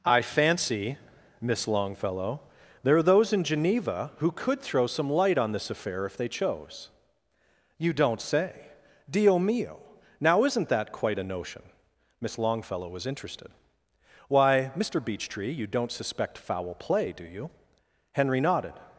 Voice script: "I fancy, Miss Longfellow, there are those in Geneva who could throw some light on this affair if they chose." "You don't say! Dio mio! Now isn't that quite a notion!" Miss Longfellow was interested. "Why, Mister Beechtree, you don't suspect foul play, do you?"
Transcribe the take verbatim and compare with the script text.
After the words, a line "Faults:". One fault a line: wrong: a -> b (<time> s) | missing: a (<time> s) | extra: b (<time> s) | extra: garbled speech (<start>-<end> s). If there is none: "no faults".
"I fancy, Miss Longfellow, there are those in Geneva who could throw some light on this affair if they chose." "You don't say! Dio mio! Now isn't that quite a notion!" Miss Longfellow was interested. "Why, Mister Beechtree, you don't suspect foul play, do you?" Henry nodded
Faults:
extra: Henry nodded (18.1 s)